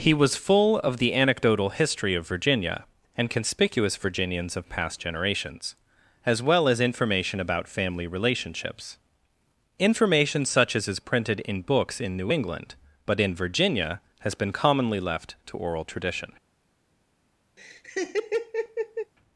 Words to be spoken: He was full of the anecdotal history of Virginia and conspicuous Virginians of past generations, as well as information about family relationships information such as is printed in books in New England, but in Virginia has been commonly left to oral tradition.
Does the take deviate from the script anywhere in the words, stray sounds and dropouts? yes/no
yes